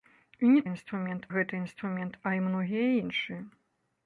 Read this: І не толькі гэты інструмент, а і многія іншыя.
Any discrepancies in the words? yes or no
yes